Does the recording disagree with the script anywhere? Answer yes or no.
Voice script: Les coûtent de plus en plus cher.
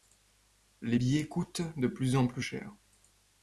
yes